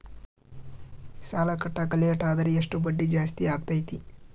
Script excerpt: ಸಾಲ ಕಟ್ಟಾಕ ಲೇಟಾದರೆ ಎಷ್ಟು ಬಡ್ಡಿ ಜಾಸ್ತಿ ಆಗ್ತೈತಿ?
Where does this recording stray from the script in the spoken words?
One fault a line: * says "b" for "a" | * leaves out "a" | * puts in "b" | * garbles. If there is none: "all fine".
all fine